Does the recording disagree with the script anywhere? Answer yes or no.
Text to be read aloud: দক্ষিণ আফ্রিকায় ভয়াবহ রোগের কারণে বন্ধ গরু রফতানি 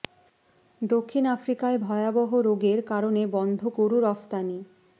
no